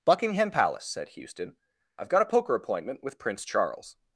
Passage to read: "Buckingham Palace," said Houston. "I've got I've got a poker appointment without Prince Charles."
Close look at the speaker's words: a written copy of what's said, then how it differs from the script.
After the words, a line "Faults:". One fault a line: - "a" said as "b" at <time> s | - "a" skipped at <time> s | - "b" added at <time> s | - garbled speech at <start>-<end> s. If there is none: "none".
"Buckingham Palace," said Houston. "I've got a poker appointment with Prince Charles."
Faults:
- "I've got" skipped at 2.2 s
- "without" said as "with" at 3.0 s